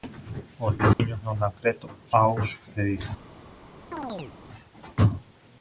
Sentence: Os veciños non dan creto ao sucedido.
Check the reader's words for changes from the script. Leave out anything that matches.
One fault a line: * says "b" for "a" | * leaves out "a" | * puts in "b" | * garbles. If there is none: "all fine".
all fine